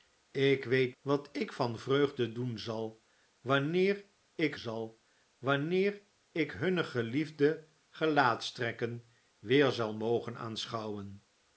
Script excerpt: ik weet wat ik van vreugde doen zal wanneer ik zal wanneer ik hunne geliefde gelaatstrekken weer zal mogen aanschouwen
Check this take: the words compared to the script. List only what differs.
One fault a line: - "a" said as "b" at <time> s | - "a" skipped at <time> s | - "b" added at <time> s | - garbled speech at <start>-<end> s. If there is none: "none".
none